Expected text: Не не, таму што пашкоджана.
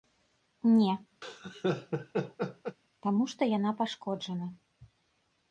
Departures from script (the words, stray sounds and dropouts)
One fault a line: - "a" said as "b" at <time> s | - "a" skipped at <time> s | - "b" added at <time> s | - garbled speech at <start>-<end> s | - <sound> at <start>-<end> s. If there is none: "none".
- "не" skipped at 0.9 s
- laugh at 1.2-2.8 s
- "яна" added at 3.6 s